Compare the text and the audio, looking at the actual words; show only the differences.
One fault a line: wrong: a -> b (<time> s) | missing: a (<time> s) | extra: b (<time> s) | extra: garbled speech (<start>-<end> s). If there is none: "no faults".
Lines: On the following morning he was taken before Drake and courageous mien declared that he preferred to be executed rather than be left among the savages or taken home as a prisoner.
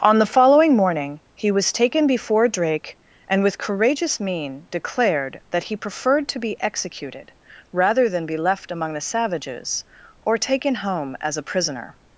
extra: with (3.4 s)